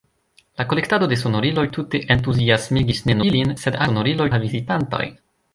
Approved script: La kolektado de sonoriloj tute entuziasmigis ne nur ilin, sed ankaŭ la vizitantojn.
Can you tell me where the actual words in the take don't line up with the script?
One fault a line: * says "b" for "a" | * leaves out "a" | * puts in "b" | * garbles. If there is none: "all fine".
* leaves out "nur"
* says "sonoriloj" for "ankaŭ"